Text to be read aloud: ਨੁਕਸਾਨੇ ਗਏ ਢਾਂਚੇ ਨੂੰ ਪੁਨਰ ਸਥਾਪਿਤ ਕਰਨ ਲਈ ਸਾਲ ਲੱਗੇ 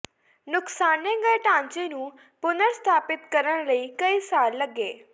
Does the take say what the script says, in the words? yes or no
no